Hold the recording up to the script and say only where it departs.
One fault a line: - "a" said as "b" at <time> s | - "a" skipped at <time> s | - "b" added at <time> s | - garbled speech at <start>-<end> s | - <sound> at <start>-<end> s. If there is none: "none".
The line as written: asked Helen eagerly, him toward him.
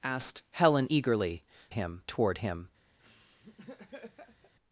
- laugh at 3.0-4.5 s